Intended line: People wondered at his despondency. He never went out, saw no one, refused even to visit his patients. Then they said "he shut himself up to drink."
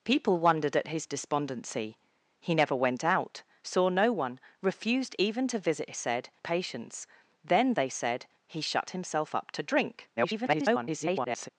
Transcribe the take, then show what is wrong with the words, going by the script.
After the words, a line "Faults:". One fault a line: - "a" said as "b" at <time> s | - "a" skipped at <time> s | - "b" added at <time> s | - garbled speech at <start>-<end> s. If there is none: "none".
People wondered at his despondency. He never went out, saw no one, refused even to visit said patients. Then they said "he shut himself up to drink." [garbled]
Faults:
- "his" said as "said" at 5.9 s
- garbled speech at 10.2-11.5 s